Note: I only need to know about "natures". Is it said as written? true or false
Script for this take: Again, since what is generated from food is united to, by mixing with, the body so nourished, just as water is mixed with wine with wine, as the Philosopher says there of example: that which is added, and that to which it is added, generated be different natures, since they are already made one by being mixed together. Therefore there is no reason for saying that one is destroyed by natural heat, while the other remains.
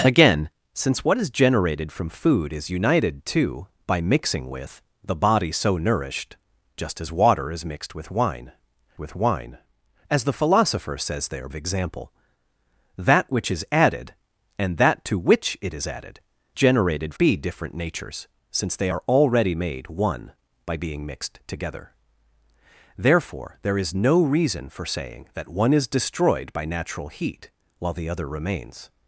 true